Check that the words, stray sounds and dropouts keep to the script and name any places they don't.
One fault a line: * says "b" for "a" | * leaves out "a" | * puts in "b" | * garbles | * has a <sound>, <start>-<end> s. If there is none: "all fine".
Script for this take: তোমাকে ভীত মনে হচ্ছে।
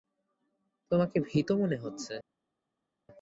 all fine